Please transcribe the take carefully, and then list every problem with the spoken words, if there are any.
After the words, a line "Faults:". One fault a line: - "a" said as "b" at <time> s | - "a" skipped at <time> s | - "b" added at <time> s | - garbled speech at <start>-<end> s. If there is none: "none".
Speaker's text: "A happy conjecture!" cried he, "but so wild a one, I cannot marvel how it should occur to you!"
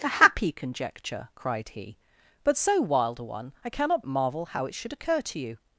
"A happy conjecture!" cried he, "but so wild a one, I cannot marvel how it should occur to you!"
Faults:
none